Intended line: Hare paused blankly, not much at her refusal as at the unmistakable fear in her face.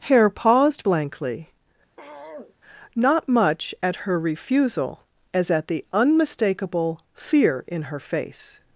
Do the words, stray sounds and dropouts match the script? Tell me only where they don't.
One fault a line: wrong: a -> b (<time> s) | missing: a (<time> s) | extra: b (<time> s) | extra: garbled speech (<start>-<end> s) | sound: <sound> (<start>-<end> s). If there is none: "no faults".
sound: throat clearing (2.0-2.6 s)